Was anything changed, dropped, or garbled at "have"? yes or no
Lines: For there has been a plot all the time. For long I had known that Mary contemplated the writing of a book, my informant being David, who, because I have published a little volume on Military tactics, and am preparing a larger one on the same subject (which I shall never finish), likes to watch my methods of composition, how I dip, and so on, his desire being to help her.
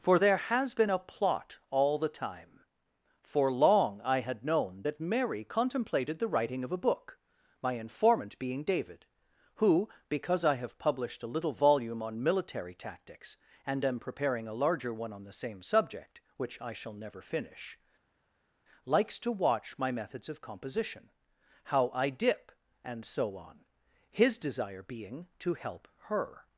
no